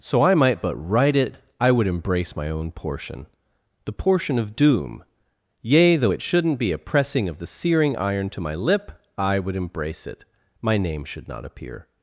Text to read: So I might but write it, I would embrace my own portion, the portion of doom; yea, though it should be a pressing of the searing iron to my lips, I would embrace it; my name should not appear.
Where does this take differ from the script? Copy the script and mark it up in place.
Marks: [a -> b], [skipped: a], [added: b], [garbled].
So I might but write it, I would embrace my own portion, the portion of doom; yea, though it [should -> shouldn't] be a pressing of the searing iron to my [lips, -> lip] I would embrace it; my name should not appear.